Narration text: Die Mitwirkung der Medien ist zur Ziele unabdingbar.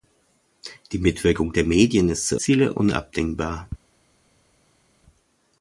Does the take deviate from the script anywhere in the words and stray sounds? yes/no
no